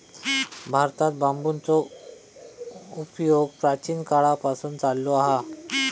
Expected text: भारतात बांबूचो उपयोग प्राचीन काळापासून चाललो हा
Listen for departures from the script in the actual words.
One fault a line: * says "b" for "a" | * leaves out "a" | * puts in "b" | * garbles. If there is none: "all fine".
all fine